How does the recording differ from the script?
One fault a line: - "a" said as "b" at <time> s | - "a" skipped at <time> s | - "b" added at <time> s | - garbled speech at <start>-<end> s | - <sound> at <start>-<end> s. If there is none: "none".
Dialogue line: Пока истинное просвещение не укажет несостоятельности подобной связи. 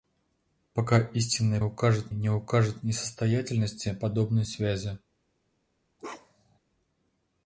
- "просвещение" said as "укажет" at 1.6 s
- bark at 6.0-6.6 s